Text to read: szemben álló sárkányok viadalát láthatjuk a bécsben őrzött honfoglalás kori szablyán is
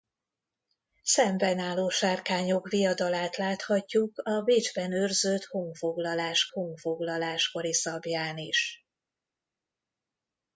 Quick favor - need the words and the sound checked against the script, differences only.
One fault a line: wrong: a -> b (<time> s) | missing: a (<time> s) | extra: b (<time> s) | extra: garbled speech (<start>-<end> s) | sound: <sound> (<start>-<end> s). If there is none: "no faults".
extra: honfoglalás (6.4 s)